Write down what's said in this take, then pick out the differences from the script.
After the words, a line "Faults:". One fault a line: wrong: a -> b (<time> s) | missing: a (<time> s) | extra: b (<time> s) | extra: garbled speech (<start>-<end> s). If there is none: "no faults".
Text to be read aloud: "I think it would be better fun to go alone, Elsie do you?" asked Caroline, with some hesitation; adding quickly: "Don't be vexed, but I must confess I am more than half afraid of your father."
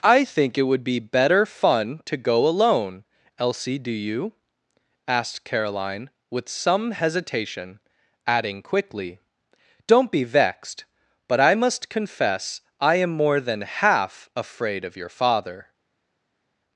"I think it would be better fun to go alone, Elsie do you?" asked Caroline, with some hesitation; adding quickly: "Don't be vexed, but I must confess I am more than half afraid of your father."
Faults:
no faults